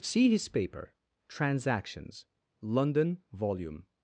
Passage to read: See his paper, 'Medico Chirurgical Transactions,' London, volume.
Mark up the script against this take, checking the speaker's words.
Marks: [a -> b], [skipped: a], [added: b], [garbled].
See his paper, [skipped: 'Medico Chirurgical] Transactions,' London, volume.